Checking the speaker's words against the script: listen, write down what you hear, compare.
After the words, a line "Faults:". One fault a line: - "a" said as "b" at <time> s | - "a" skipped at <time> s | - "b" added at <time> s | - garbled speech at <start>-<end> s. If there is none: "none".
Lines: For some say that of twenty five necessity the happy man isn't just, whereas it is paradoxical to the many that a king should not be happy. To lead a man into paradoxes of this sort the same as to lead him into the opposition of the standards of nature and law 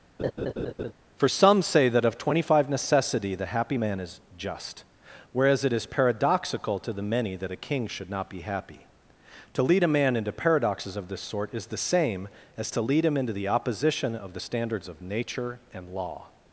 For some say that of twenty five necessity the happy man is just, whereas it is paradoxical to the many that a king should not be happy. To lead a man into paradoxes of this sort is the same as to lead him into the opposition of the standards of nature and law
Faults:
- "isn't" said as "is" at 4.0 s
- "is" added at 11.5 s